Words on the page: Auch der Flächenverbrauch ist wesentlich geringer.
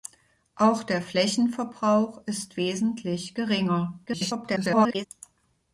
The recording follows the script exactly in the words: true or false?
false